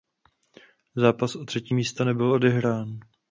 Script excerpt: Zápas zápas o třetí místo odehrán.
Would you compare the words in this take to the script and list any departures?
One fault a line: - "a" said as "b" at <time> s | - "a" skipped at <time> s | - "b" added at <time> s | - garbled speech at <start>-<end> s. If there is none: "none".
- "zápas" skipped at 1.4 s
- "nebyl" added at 2.0 s